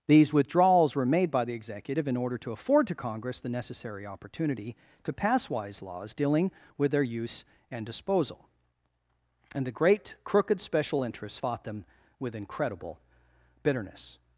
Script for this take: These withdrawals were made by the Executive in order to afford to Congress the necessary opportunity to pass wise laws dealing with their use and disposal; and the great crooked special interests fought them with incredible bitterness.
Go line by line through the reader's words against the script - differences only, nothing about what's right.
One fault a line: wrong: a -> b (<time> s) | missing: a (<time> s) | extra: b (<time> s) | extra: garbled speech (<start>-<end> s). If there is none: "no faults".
no faults